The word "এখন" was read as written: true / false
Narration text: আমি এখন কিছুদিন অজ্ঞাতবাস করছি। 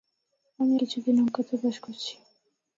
false